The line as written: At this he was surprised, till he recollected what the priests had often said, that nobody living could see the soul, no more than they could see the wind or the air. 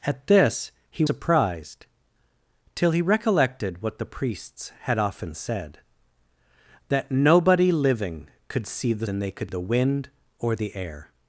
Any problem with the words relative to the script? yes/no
yes